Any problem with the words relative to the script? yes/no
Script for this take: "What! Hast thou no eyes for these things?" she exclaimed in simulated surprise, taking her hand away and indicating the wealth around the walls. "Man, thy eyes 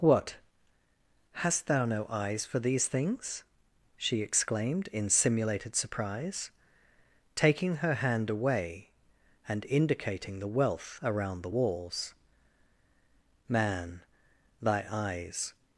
no